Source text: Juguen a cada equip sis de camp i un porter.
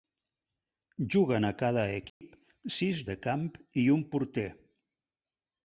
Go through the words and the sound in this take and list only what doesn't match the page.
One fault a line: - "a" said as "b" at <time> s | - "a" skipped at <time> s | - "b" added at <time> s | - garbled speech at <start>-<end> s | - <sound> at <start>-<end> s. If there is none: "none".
- dropout at 2.1-2.2 s